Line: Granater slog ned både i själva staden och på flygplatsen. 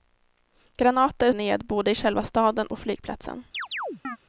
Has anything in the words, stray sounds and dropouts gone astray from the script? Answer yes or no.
yes